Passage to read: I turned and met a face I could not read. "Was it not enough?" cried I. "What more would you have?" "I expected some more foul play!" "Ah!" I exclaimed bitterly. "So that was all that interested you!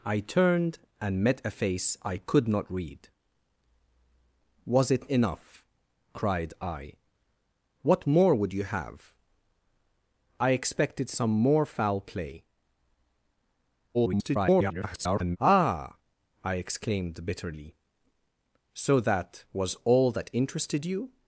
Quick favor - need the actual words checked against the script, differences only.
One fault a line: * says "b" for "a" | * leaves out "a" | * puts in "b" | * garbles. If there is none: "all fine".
* leaves out "not"
* garbles